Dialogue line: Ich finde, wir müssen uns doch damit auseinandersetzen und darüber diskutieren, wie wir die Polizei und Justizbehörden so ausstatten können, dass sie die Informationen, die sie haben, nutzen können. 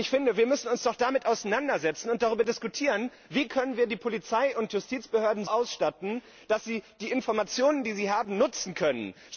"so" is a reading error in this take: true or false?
true